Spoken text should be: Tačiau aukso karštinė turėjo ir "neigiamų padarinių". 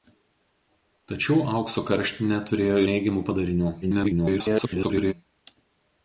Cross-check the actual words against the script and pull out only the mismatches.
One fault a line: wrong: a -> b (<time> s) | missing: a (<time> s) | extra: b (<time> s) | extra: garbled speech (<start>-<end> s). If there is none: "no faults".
missing: ir (2.8 s)
extra: garbled speech (3.8-5.1 s)